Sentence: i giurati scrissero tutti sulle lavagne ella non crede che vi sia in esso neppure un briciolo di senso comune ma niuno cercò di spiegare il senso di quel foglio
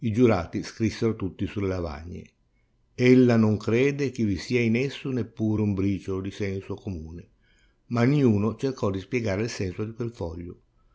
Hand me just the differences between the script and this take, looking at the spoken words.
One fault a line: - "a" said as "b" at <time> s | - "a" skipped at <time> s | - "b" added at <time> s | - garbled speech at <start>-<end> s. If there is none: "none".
none